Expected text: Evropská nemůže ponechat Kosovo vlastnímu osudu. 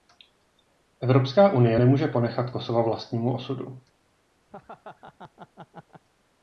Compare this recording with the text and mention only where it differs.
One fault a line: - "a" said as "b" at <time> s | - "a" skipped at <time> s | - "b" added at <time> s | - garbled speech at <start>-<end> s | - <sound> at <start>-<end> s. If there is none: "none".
- "unie" added at 1.5 s
- laugh at 4.5-6.0 s